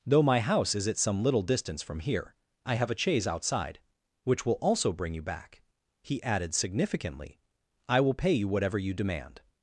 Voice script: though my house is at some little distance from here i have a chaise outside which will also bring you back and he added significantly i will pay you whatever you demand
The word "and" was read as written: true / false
false